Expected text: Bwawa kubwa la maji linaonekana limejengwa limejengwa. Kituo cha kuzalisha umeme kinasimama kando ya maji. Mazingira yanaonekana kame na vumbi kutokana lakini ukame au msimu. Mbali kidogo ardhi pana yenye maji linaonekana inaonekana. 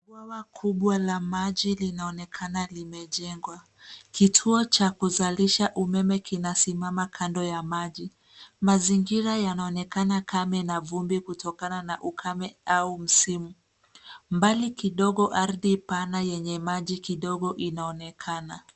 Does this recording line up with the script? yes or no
no